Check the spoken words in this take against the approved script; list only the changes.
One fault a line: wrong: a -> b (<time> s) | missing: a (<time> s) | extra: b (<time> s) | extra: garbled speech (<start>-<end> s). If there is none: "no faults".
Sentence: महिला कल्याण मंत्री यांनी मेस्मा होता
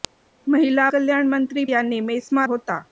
no faults